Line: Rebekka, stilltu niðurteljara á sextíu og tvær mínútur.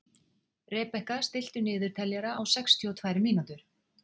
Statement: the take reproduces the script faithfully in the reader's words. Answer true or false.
true